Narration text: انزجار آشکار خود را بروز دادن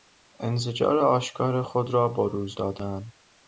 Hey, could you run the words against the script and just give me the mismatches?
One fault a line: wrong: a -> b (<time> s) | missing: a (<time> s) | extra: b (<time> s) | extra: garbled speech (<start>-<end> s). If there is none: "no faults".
no faults